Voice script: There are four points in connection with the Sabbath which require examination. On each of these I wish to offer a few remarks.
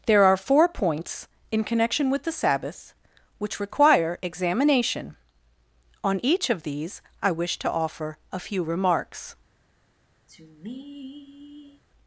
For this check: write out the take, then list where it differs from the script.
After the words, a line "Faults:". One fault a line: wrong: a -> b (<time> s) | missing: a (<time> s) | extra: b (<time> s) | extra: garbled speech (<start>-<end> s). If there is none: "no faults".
There are four points in connection with the Sabbath which require examination. On each of these I wish to offer a few remarks.
Faults:
no faults